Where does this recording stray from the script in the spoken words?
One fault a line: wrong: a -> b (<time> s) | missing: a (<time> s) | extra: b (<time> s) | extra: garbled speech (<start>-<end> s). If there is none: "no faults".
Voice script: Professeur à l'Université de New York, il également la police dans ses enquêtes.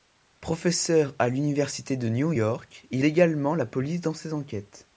no faults